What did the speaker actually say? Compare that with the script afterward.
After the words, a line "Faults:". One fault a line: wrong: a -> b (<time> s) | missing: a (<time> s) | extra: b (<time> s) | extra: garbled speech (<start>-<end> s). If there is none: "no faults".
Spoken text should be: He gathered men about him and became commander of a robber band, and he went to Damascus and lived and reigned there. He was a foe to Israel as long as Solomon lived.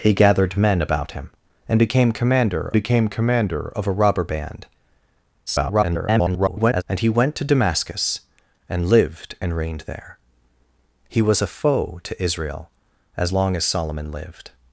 He gathered men about him and became commander became commander of a robber band, [garbled] and he went to Damascus and lived and reigned there. He was a foe to Israel as long as Solomon lived.
Faults:
extra: became commander (2.7 s)
extra: garbled speech (5.5-6.8 s)